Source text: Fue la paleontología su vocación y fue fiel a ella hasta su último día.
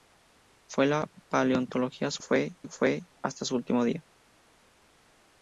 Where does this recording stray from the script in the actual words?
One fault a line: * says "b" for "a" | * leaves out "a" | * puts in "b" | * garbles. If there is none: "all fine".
* says "fue" for "vocación"
* leaves out "fiel a ella"